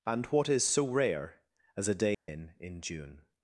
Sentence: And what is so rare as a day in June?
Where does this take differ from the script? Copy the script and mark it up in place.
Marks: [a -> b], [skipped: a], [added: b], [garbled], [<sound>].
And what is so rare as a day [dropout] in [added: in] June?